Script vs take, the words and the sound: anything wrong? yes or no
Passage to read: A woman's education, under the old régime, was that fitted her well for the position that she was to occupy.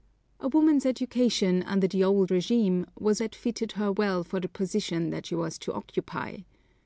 no